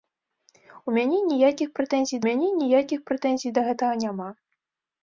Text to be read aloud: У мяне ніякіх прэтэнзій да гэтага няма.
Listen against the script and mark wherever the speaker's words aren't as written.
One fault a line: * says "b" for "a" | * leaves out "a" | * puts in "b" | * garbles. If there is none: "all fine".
* puts in "мяне ніякіх прэтэнзій"